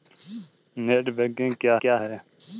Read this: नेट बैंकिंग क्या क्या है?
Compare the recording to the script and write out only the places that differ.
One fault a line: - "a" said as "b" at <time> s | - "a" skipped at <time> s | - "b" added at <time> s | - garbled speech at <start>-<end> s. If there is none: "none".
none